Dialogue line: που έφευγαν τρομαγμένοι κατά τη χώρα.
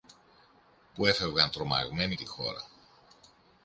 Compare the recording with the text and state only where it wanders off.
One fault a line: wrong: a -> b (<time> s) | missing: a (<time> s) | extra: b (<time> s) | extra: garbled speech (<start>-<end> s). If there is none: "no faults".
missing: κατά (2.1 s)